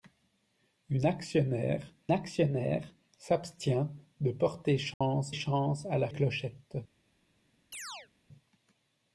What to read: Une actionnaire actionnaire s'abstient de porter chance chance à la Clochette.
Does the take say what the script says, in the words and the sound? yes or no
no